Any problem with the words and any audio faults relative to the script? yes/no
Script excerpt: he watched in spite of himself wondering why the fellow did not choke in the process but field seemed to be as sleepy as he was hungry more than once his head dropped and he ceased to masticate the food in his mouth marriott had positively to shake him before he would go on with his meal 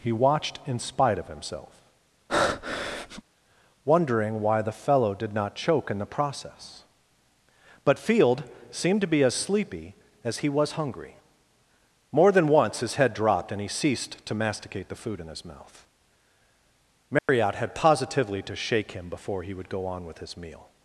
yes